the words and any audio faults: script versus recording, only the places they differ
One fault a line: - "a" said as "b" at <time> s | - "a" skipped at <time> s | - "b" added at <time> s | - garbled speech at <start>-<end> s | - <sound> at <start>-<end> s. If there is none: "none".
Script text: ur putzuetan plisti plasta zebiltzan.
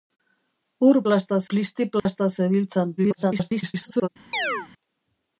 - "putzuetan" said as "plasta" at 1.0 s
- dropout at 2.0-2.1 s
- garbled speech at 3.0-4.1 s
- chirp at 4.3-4.7 s